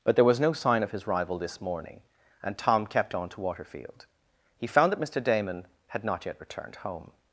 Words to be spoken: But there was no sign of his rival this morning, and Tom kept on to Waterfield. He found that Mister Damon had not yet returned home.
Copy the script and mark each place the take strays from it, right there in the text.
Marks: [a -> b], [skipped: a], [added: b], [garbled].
But there was no sign of his rival this morning, and Tom kept on to Waterfield. He found that Mister Damon had not yet returned home.